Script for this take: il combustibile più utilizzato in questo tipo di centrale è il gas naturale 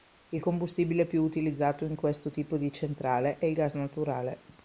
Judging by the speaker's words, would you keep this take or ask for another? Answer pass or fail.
pass